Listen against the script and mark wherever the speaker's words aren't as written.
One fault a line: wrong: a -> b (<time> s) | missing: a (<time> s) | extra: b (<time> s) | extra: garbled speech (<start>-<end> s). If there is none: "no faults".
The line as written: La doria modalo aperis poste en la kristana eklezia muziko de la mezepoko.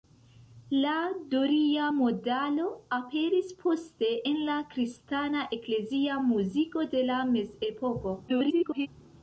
extra: garbled speech (8.3-8.9 s)